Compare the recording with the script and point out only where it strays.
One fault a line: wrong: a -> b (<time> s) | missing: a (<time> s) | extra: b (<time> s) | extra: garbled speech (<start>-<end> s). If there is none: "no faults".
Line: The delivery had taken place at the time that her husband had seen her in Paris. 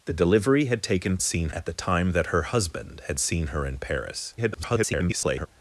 wrong: place -> seen (1.2 s)
extra: garbled speech (4.4-5.5 s)